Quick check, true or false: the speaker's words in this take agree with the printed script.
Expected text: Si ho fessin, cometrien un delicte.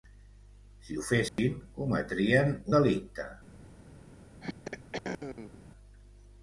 false